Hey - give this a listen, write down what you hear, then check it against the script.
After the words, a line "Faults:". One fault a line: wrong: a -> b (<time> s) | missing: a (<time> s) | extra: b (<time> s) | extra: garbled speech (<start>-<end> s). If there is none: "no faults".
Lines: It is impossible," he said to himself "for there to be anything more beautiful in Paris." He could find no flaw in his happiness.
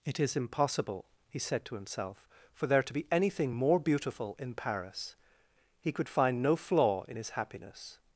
It is impossible," he said to himself "for there to be anything more beautiful in Paris." He could find no flaw in his happiness.
Faults:
no faults